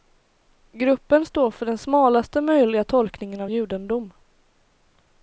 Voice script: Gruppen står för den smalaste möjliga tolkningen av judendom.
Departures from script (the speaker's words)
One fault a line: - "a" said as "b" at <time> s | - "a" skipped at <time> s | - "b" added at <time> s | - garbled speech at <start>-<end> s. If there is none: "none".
none